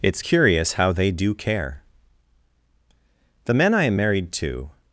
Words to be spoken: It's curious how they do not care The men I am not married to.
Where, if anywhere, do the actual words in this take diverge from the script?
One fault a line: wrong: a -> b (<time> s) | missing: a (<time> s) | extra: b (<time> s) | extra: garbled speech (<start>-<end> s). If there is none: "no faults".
missing: not (1.3 s)
missing: not (4.0 s)